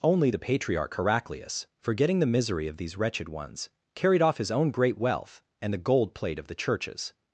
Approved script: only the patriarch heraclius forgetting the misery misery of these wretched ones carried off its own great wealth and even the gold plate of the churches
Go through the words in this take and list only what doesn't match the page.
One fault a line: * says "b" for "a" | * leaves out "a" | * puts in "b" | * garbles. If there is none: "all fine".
* leaves out "misery"
* says "his" for "its"
* leaves out "even"